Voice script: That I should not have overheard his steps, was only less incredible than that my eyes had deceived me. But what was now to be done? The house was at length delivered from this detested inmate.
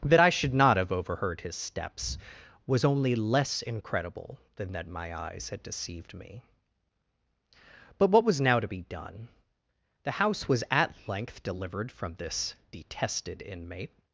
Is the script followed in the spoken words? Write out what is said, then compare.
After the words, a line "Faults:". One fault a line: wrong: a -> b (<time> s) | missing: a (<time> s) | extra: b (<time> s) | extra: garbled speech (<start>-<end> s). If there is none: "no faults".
That I should not have overheard his steps, was only less incredible than that my eyes had deceived me. But what was now to be done? The house was at length delivered from this detested inmate.
Faults:
no faults